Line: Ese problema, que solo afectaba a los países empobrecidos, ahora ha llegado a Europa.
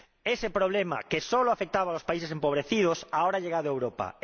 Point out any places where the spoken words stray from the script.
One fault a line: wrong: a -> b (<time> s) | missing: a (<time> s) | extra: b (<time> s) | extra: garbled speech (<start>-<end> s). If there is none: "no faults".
no faults